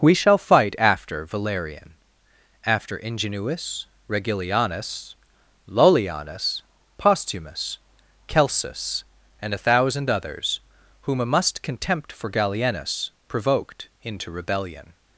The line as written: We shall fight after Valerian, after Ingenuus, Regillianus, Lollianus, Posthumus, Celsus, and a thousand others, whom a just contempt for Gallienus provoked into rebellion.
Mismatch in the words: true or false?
true